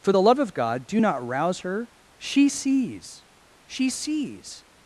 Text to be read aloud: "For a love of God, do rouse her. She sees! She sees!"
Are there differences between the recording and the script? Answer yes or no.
yes